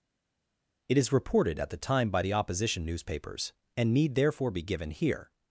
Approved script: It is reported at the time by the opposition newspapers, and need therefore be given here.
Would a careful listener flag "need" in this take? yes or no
no